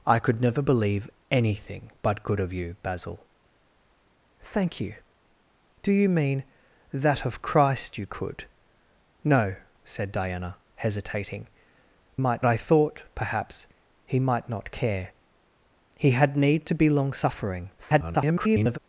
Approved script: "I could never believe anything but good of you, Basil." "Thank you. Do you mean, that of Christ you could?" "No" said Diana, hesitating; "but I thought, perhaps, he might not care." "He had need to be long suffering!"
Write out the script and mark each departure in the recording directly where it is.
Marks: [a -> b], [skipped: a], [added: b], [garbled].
"I could never believe anything but good of you, Basil." "Thank you. Do you mean, that of Christ you could?" "No" said Diana, hesitating; ["but -> might] I thought, perhaps, he might not care." "He had need to be long suffering!" [garbled]